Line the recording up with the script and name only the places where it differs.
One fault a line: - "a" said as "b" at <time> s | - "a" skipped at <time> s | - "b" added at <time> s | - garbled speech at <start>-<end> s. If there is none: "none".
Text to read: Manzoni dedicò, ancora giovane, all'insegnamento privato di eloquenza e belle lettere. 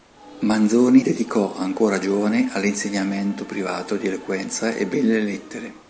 none